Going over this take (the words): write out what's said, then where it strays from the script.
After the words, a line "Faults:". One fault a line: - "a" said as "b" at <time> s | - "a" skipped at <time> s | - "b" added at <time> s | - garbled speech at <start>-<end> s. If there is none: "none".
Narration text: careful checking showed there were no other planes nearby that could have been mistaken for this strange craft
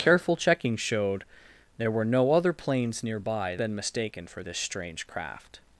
careful checking showed there were no other planes nearby been mistaken for this strange craft
Faults:
- "that could have" skipped at 3.5 s